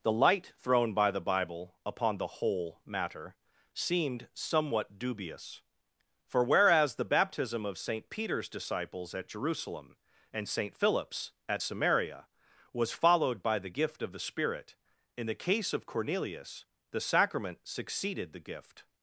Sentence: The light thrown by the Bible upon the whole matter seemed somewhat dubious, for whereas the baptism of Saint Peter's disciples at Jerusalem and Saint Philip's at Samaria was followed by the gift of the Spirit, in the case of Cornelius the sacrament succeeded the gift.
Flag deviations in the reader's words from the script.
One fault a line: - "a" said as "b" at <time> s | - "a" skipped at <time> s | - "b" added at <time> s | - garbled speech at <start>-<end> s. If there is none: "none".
none